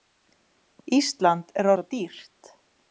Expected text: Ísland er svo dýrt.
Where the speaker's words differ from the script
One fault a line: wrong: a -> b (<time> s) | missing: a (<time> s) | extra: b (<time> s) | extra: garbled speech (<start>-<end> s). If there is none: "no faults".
no faults